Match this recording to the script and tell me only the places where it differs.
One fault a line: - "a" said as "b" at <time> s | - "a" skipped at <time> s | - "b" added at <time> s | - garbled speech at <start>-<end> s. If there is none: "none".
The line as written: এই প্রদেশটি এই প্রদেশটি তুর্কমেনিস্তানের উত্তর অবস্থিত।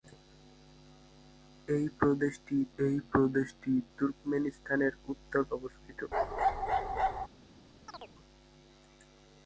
none